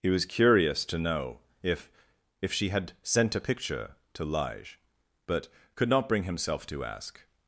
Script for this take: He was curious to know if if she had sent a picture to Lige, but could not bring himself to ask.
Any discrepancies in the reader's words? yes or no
no